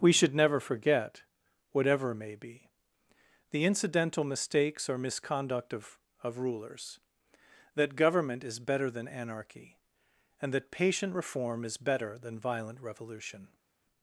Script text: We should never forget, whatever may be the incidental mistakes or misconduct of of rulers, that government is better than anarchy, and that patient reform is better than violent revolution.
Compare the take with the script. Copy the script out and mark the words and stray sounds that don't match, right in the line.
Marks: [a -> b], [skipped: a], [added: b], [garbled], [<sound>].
We should never forget, whatever may be the incidental mistakes or misconduct of of rulers, that government is better than anarchy, and that patient reform is better than violent revolution.